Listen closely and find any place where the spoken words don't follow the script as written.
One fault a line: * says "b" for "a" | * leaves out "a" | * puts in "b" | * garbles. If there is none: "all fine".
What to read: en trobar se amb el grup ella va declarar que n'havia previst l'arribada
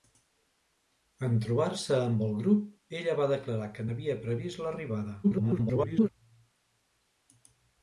* garbles